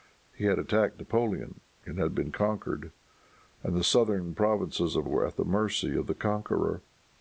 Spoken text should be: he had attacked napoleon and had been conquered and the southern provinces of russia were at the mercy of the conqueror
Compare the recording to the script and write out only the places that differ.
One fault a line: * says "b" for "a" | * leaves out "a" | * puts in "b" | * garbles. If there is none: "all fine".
* leaves out "russia"